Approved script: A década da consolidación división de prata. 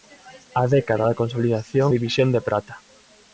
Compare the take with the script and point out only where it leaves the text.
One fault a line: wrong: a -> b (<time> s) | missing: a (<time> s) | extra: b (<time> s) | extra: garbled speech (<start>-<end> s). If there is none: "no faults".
no faults